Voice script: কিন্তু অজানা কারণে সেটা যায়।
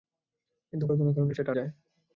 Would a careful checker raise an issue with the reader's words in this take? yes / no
no